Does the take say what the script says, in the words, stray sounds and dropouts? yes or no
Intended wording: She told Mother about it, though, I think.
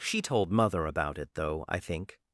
yes